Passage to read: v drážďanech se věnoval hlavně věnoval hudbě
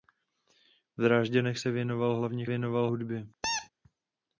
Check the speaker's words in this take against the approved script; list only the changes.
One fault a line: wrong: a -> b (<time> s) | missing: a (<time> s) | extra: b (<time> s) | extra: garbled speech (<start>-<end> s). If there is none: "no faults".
no faults